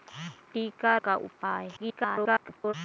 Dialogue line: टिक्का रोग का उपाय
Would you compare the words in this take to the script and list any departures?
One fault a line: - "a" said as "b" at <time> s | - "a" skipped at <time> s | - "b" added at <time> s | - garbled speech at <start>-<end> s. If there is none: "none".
- "रोग" skipped at 1.0 s
- garbled speech at 1.8-2.7 s